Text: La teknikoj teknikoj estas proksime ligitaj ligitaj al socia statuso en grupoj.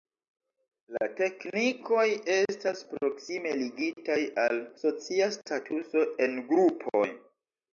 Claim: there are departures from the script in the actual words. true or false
true